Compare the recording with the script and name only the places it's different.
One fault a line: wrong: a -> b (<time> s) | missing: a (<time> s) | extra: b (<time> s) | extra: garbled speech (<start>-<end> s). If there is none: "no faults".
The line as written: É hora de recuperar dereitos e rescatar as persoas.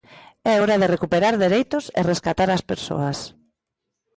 no faults